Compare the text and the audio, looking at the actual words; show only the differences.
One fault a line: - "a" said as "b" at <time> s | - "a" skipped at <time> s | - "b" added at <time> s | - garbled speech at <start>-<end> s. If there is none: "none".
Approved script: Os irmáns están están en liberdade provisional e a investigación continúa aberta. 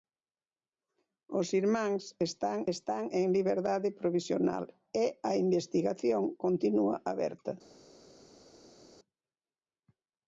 none